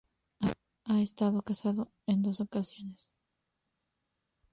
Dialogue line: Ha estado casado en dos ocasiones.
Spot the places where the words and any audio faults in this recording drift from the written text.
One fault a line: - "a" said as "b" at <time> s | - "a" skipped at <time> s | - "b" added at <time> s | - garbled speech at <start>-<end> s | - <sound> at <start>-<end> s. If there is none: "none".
none